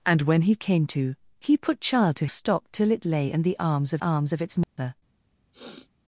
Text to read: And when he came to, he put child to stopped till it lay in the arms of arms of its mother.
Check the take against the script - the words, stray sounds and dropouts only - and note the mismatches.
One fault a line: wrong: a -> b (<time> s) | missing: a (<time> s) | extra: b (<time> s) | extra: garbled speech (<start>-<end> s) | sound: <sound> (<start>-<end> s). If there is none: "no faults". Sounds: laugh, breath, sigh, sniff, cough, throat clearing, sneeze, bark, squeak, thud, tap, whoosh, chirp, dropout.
sound: dropout (4.6-4.8 s)
sound: sniff (5.5-5.9 s)